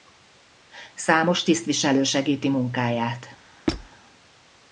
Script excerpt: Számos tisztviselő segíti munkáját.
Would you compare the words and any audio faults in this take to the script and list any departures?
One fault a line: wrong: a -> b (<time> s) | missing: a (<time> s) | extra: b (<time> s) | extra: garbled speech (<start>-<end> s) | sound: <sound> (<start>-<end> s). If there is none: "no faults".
sound: squeak (3.7-3.9 s)